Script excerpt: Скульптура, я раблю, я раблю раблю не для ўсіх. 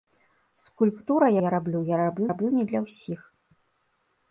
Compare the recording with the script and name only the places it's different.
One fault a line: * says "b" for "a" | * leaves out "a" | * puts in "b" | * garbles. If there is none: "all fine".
all fine